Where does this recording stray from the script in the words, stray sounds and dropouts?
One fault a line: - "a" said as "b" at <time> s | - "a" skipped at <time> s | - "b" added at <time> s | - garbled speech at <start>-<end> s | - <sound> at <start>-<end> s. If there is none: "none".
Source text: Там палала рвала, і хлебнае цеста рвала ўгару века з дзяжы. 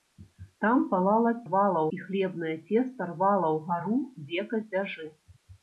none